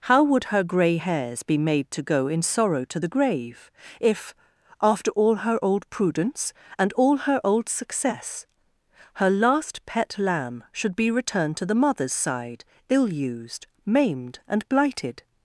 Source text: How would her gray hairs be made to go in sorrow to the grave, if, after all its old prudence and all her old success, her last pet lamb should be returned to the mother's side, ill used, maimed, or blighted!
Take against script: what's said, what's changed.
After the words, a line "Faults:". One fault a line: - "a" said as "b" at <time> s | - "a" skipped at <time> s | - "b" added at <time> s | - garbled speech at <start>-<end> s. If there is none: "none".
How would her gray hairs be made to go in sorrow to the grave, if, after all her old prudence and all her old success, her last pet lamb should be returned to the mother's side, ill used, maimed, and blighted!
Faults:
- "its" said as "her" at 5.4 s
- "or" said as "and" at 14.5 s